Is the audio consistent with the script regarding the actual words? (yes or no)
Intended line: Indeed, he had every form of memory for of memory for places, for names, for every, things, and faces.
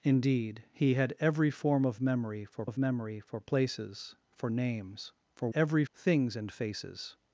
yes